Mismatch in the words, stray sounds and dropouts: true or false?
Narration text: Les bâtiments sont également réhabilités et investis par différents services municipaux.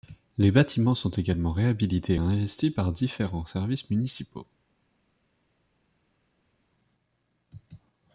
false